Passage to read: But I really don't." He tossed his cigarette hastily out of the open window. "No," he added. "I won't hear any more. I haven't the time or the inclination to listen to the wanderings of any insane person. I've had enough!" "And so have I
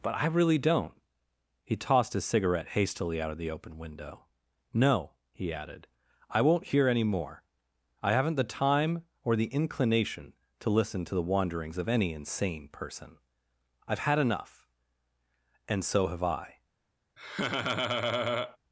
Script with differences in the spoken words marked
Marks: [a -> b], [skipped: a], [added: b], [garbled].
But I really don't." He tossed his cigarette hastily out of the open window. "No," he added. "I won't hear any more. I haven't the time or the inclination to listen to the wanderings of any insane person. I've had enough!" "And so have I